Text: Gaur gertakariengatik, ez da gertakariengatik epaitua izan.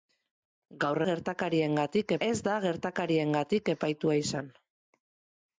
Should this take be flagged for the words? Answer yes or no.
no